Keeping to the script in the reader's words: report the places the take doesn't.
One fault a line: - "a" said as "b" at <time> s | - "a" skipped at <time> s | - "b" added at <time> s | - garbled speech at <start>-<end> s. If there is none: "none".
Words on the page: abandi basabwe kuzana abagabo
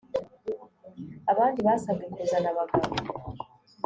none